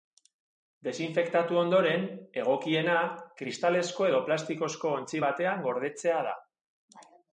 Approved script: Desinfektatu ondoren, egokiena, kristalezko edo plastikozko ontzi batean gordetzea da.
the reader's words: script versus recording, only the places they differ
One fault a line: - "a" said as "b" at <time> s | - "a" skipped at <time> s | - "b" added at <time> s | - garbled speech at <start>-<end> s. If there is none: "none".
none